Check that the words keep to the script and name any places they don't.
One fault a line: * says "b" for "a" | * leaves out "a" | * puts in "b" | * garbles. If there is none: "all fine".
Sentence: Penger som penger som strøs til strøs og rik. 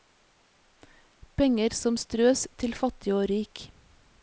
* leaves out "penger som"
* says "fattig" for "strøs"